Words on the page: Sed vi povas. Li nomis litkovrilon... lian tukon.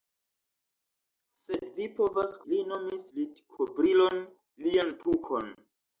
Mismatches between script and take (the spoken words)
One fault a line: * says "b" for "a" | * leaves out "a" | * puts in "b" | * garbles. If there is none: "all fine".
all fine